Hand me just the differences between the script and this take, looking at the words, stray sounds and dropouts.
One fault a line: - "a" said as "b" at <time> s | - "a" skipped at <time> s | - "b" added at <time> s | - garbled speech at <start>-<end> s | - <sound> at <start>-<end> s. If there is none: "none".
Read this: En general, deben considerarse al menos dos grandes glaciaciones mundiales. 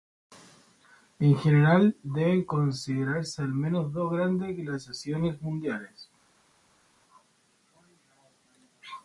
none